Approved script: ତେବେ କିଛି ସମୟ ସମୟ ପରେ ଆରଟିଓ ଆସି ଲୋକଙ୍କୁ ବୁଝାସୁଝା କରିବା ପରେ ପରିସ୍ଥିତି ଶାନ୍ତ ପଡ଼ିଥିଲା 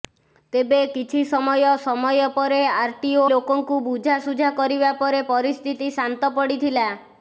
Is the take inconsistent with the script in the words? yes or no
yes